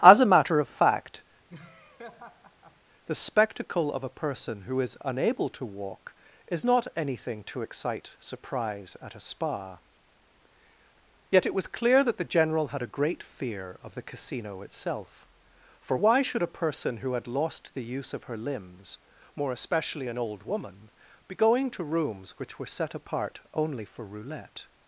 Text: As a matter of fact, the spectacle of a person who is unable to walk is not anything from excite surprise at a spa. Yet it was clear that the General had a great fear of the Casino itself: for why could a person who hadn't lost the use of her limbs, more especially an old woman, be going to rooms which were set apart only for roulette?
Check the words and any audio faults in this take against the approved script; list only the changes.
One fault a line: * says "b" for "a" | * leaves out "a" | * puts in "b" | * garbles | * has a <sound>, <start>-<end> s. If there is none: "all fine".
* has a laugh, 1.5-2.8 s
* says "to" for "from"
* says "should" for "could"
* says "had" for "hadn't"